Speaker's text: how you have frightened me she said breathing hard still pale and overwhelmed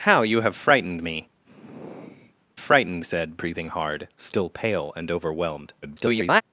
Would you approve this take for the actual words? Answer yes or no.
no